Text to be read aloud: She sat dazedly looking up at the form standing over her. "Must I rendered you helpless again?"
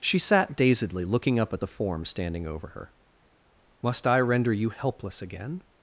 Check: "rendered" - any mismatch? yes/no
yes